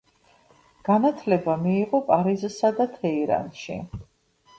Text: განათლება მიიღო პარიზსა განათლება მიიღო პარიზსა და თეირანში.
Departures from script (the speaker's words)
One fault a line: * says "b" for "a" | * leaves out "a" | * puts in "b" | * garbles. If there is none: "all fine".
* leaves out "განათლება მიიღო პარიზსა"